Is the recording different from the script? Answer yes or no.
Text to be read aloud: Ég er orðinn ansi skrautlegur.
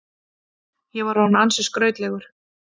yes